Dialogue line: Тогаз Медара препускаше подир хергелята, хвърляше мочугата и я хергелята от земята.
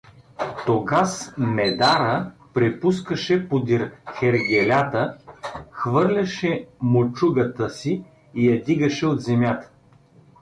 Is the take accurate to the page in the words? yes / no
no